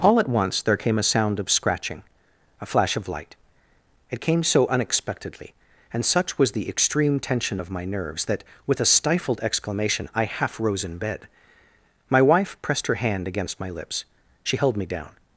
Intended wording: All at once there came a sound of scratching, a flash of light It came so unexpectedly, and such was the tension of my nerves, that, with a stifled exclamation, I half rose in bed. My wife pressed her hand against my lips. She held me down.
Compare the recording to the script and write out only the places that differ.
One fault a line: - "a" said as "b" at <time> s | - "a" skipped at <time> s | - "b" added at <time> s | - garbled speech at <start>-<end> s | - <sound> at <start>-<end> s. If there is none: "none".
- "extreme" added at 6.7 s